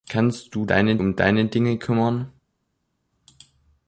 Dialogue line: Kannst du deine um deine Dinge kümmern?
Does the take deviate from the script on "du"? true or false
false